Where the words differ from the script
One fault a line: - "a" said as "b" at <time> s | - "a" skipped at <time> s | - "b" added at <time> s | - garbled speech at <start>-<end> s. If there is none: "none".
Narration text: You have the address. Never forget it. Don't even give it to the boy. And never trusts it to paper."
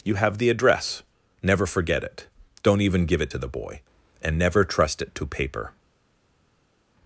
- "trusts" said as "trust" at 4.6 s